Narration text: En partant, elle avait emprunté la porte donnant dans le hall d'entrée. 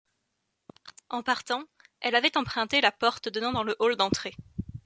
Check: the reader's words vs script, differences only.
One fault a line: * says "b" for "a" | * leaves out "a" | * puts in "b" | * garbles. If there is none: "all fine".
all fine